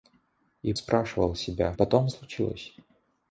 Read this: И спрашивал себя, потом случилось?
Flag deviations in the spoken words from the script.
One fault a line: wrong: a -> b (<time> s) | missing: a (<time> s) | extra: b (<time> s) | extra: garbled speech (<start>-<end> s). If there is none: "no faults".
no faults